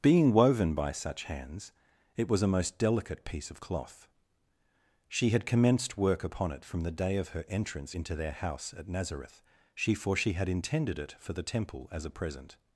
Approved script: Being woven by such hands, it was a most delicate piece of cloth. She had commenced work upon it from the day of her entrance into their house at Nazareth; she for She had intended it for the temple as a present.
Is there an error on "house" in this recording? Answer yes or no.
no